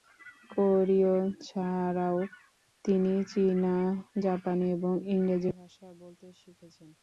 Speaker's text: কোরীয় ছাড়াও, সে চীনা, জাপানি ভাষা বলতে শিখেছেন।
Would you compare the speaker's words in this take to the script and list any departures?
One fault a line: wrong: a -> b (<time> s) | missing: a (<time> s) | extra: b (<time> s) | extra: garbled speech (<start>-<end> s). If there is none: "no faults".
wrong: সে -> তিনি (2.9 s)
extra: এবং ইংরেজি (4.8 s)